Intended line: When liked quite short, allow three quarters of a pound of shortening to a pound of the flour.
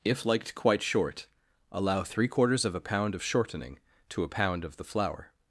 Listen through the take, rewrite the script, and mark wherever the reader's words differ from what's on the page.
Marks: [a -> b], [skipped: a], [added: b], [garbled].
[When -> If] liked quite short, allow three quarters of a pound of shortening to a pound of the flour.